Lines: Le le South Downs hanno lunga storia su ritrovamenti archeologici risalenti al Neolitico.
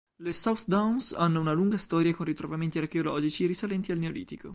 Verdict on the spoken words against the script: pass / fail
fail